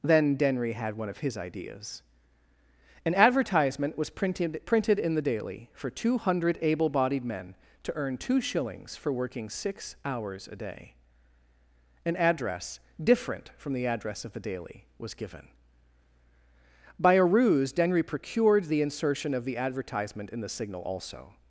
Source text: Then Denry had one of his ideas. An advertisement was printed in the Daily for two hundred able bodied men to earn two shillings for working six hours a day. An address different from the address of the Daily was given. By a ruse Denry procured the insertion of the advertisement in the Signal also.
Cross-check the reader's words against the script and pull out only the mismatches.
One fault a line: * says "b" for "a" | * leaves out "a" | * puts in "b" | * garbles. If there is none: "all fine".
* puts in "printed"